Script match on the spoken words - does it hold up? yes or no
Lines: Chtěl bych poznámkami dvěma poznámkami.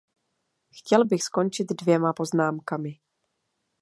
no